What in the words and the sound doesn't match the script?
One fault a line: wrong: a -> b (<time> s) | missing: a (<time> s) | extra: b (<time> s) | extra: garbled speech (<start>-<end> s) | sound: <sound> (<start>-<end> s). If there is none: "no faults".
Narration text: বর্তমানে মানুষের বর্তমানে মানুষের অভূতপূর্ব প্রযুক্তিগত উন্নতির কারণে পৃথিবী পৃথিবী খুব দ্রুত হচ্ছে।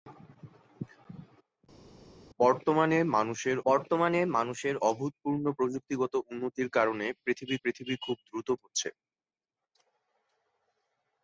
no faults